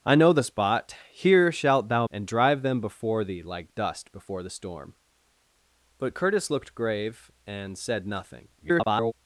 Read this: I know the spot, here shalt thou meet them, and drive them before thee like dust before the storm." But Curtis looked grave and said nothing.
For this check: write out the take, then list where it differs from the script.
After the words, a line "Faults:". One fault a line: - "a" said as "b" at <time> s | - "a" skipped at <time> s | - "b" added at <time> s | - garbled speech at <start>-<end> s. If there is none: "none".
I know the spot, here shalt thou and drive them before thee like dust before the storm." But Curtis looked grave and said nothing. [garbled]
Faults:
- "meet them" skipped at 2.1 s
- garbled speech at 8.6-9.1 s